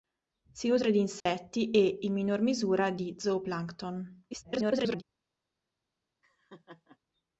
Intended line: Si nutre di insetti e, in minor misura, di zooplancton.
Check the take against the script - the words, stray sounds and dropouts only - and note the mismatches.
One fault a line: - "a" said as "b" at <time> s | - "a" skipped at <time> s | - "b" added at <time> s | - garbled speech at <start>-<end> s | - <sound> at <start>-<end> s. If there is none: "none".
- dropout at 1.2-1.3 s
- garbled speech at 4.3-5.0 s
- laugh at 6.2-7.0 s